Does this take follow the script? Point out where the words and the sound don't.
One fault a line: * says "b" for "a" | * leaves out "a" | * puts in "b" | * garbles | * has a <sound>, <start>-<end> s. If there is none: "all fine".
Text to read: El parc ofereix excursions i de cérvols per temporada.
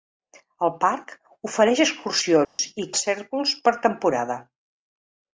* has a dropout, 2.4-2.6 s